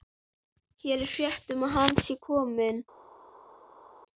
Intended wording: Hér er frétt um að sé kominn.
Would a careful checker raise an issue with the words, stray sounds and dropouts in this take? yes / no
yes